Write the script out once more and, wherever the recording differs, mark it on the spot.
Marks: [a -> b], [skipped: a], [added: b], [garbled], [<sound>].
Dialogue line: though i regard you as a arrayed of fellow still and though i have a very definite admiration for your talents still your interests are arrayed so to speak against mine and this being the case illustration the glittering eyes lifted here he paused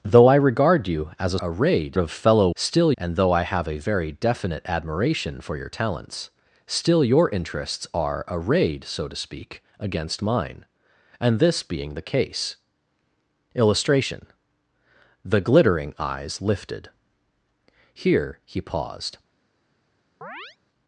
though i regard you as a arrayed of fellow still and though i have a very definite admiration for your talents still your interests are arrayed so to speak against mine and this being the case illustration the glittering eyes lifted here he paused [chirp]